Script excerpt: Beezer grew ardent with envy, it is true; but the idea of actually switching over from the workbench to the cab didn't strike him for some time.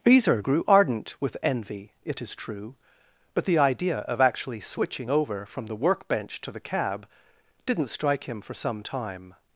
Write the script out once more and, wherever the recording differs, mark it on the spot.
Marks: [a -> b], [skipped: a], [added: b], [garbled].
Beezer grew ardent with envy, it is true; but the idea of actually switching over from the workbench to the cab didn't strike him for some time.